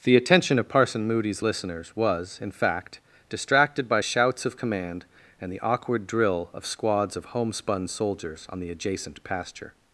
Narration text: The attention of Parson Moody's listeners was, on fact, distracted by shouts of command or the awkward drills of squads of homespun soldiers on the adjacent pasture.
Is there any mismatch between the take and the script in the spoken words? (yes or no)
yes